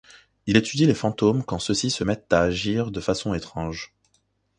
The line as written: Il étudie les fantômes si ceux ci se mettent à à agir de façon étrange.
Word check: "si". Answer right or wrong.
wrong